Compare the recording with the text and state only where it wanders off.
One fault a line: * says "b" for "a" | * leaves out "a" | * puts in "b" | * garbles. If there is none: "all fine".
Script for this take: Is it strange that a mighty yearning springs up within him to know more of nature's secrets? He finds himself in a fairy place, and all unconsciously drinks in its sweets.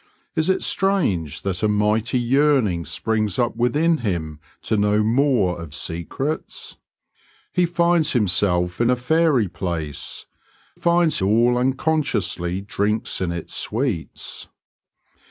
* leaves out "nature's"
* says "finds" for "and"